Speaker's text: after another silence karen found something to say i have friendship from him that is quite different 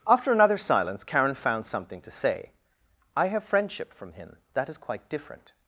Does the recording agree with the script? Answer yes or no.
yes